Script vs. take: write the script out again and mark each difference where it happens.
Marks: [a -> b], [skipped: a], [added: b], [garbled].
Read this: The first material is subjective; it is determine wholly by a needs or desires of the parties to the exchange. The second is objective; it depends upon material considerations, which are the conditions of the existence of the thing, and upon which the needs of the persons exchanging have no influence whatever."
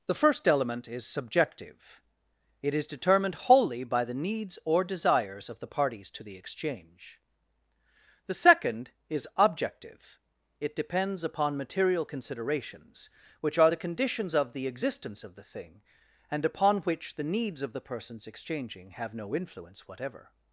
The first [material -> element] is subjective; it is [determine -> determined] wholly by [a -> the] needs or desires of the parties to the exchange. The second is objective; it depends upon material considerations, which are the conditions of the existence of the thing, and upon which the needs of the persons exchanging have no influence whatever."